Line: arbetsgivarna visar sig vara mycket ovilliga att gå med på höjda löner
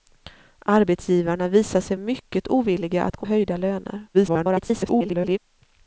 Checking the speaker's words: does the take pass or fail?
fail